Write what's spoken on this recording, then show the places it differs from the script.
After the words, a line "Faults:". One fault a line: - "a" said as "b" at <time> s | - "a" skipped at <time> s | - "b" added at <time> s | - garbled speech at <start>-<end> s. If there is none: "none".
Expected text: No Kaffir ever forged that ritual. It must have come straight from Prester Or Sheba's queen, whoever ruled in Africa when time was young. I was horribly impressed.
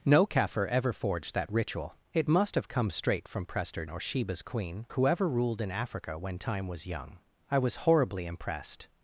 No Kaffir ever forged that ritual. It must have come straight from Prester Or Sheba's queen, whoever ruled in Africa when time was young. I was horribly impressed.
Faults:
none